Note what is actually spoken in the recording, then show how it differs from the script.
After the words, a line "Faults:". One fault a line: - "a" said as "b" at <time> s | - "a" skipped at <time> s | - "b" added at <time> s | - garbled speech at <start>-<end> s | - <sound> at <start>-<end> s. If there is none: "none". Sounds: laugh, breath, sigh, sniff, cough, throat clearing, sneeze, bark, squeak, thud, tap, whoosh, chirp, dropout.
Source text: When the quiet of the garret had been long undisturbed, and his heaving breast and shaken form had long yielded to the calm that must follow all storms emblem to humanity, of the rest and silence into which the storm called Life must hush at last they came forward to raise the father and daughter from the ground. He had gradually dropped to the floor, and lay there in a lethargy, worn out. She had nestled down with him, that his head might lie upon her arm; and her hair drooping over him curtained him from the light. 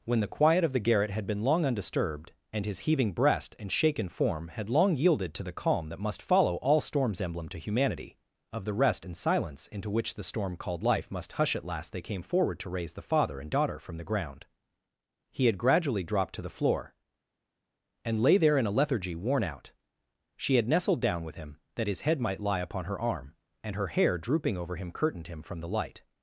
When the quiet of the garret had been long undisturbed, and his heaving breast and shaken form had long yielded to the calm that must follow all storms emblem to humanity, of the rest and silence into which the storm called Life must hush at last they came forward to raise the father and daughter from the ground. He had gradually dropped to the floor, and lay there in a lethargy, worn out. She had nestled down with him, that his head might lie upon her arm; and her hair drooping over him curtained him from the light.
Faults:
none